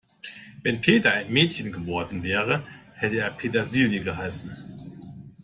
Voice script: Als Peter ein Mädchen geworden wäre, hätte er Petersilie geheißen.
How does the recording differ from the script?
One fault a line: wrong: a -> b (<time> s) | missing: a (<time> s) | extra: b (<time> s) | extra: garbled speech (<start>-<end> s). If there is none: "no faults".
wrong: Als -> Wenn (0.6 s)